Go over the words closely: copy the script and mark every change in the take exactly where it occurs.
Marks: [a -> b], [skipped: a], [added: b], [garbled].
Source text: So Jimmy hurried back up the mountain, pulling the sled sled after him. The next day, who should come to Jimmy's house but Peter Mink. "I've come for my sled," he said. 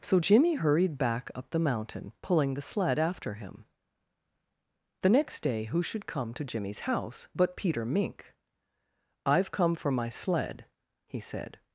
So Jimmy hurried back up the mountain, pulling the sled [skipped: sled] after him. The next day, who should come to Jimmy's house but Peter Mink. "I've come for my sled," he said.